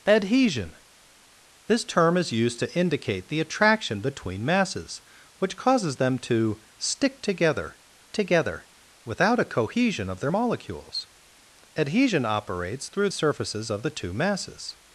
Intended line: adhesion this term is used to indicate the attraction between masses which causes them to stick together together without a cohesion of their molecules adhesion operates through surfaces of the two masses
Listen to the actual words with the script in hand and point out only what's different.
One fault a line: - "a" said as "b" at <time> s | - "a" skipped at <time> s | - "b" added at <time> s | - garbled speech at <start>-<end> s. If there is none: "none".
none